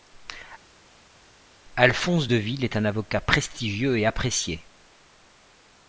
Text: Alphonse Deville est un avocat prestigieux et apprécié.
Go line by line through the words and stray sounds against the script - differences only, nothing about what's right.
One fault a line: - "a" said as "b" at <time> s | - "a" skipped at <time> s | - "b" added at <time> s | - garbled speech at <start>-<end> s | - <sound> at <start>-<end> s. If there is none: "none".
none